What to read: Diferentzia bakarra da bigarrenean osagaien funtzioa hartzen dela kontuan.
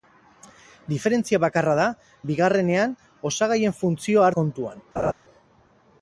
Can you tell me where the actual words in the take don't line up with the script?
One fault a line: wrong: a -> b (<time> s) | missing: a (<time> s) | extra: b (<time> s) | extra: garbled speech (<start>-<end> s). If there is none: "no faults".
missing: hartzen dela (4.3 s)